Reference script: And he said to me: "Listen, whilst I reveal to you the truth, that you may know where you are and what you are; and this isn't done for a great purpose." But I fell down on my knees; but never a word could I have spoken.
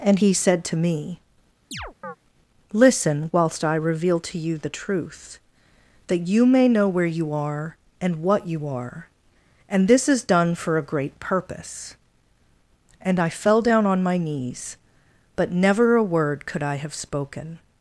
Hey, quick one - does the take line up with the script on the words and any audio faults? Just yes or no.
no